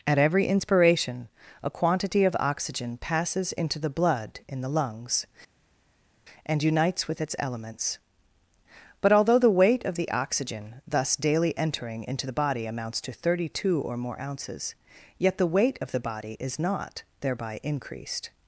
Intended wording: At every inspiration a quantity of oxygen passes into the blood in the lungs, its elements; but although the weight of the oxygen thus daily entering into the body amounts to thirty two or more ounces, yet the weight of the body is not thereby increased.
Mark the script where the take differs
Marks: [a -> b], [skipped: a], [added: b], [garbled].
At every inspiration a quantity of oxygen passes into the blood in the lungs, [added: and unites with] its elements; but although the weight of the oxygen thus daily entering into the body amounts to thirty two or more ounces, yet the weight of the body is not thereby increased.